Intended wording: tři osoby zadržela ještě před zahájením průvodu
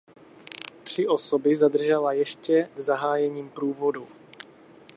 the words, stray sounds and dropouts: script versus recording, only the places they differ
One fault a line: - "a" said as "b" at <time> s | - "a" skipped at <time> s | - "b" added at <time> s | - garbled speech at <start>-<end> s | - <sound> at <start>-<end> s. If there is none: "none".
- "před" skipped at 2.7 s